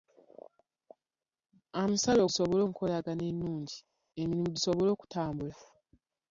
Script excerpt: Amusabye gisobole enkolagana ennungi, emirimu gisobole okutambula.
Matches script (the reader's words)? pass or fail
pass